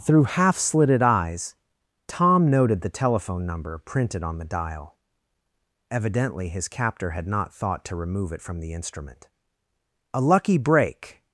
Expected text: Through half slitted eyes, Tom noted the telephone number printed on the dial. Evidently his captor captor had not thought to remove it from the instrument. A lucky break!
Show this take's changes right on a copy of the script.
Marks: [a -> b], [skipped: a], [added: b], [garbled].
Through half slitted eyes, Tom noted the telephone number printed on the dial. Evidently his captor [skipped: captor] had not thought to remove it from the instrument. A lucky break!